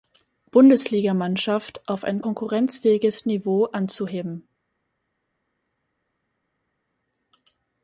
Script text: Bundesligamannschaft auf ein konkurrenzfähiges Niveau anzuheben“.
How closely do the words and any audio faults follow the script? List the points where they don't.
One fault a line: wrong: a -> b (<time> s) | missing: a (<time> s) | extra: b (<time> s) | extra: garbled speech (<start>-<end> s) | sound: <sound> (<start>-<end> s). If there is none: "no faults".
no faults